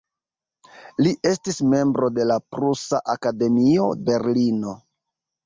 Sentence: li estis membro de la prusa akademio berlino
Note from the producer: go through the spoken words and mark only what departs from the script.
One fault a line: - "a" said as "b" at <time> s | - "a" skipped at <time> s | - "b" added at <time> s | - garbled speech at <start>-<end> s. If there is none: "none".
none